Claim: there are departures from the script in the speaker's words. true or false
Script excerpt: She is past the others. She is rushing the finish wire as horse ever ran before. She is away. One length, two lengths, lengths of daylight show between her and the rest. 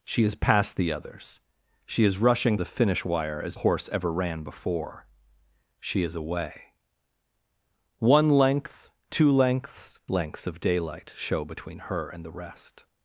false